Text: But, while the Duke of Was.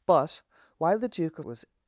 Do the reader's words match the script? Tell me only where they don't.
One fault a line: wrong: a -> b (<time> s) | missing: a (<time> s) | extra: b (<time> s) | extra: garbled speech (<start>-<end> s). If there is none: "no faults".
no faults